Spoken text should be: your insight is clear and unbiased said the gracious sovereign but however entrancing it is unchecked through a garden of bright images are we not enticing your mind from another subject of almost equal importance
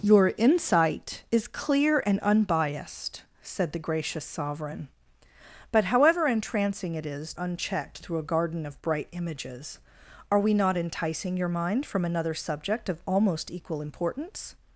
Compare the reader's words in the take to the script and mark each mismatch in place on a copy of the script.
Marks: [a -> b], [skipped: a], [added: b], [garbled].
your insight is clear and unbiased said the gracious sovereign but however entrancing it is unchecked through a garden of bright images are we not enticing your mind from another subject of almost equal importance